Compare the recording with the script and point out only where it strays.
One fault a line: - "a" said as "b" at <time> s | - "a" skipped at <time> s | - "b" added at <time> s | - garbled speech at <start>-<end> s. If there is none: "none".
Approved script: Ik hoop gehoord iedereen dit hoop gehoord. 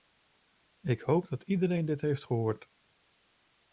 - "gehoord" said as "dat" at 1.3 s
- "hoop" said as "heeft" at 2.0 s